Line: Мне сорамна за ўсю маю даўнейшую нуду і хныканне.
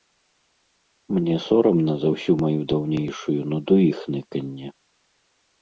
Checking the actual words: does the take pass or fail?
pass